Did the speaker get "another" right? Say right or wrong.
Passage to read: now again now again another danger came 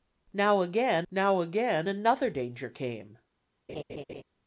right